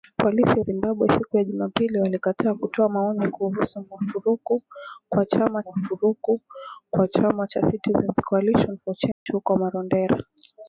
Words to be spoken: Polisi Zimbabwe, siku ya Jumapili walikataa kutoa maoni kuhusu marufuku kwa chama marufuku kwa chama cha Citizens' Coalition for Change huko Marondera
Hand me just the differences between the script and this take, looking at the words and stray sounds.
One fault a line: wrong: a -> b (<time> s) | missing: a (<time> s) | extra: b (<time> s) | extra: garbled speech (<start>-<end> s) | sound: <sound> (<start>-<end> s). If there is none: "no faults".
sound: dropout (9.1-9.3 s)